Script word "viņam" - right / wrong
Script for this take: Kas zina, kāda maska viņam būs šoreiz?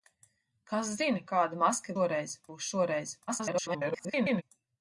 wrong